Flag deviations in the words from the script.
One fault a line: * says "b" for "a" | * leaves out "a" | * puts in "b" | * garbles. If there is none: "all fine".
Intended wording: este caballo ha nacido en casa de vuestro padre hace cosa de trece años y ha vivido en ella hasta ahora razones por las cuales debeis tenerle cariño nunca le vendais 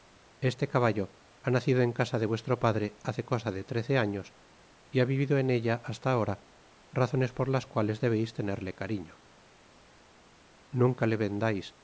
all fine